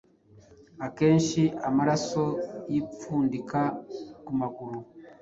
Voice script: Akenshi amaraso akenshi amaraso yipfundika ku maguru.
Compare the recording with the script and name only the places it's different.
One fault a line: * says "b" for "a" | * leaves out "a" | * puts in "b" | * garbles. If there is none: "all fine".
* leaves out "akenshi amaraso"